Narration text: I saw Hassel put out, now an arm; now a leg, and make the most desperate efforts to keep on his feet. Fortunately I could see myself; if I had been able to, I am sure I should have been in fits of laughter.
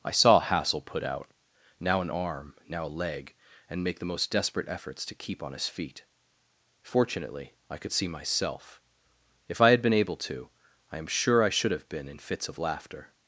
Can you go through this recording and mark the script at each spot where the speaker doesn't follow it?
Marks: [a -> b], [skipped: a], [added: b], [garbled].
I saw Hassel put out, now an arm; now a leg, and make the most desperate efforts to keep on his feet. Fortunately I could see myself; if I had been able to, I am sure I should have been in fits of laughter.